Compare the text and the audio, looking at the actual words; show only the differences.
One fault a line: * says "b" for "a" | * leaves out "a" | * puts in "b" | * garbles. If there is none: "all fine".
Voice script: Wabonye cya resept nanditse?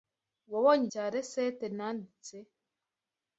all fine